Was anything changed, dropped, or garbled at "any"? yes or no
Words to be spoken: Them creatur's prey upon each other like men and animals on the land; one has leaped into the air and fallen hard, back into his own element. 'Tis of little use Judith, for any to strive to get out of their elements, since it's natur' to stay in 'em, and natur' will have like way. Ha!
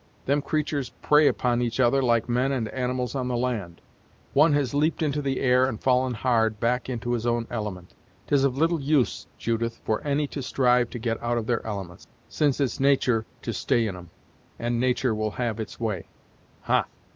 no